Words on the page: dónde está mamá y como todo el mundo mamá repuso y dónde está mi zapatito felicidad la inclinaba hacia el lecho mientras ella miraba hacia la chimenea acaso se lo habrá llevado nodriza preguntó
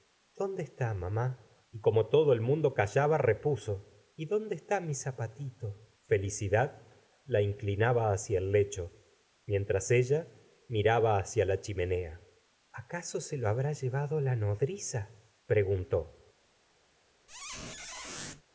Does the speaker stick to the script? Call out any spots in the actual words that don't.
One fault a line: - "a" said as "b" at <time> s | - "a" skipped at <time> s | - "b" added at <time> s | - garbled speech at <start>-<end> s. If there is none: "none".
- "mamá" said as "callaba" at 2.7 s
- "la" added at 14.2 s